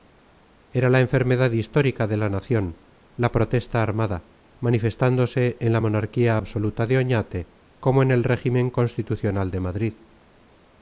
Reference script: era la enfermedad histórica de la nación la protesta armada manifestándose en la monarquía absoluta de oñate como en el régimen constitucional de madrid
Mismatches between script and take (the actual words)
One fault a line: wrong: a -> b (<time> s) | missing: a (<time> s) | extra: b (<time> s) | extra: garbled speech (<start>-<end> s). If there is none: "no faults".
no faults